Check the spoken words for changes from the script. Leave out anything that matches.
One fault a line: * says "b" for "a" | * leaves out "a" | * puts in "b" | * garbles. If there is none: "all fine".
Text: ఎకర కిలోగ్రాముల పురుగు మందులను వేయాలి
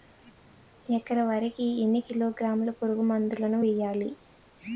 * puts in "వరి కి ఎన్ని"